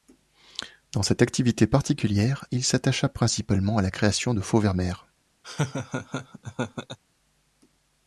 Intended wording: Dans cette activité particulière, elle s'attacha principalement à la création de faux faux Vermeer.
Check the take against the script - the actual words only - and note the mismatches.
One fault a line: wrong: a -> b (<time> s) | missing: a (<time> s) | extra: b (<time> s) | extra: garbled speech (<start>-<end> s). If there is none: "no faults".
wrong: elle -> il (2.5 s)
missing: faux (4.6 s)